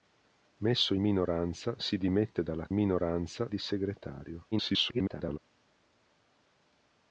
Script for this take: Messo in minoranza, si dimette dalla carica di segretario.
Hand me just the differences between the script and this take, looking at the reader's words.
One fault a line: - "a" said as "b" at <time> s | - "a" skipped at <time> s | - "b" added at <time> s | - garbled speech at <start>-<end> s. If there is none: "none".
- "in" skipped at 0.9 s
- "carica" said as "minoranza" at 2.7 s
- garbled speech at 4.5-5.4 s